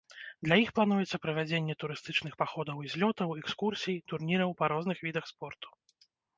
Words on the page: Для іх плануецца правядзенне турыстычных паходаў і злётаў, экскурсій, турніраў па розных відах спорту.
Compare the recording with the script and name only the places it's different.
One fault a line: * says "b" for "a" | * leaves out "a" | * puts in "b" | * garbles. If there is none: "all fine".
all fine